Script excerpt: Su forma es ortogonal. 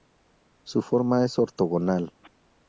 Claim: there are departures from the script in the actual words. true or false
false